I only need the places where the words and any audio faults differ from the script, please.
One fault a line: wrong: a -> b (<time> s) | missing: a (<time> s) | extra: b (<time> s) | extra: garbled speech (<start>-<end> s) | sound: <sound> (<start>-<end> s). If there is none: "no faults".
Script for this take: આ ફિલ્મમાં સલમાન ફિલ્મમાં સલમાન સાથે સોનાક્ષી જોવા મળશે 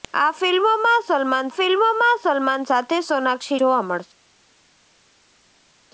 no faults